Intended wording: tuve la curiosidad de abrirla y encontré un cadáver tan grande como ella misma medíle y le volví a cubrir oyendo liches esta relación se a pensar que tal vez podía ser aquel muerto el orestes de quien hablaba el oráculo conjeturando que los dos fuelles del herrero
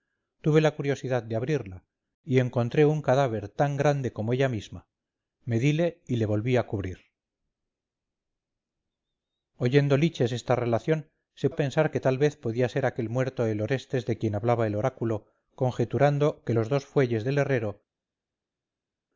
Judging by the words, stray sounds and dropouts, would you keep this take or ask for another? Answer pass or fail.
pass